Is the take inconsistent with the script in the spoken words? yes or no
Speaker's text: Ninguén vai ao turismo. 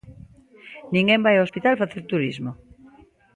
yes